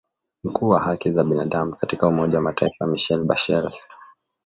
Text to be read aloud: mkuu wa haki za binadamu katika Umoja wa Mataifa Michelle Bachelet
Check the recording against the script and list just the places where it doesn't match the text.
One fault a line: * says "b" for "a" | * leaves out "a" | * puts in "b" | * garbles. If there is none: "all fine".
all fine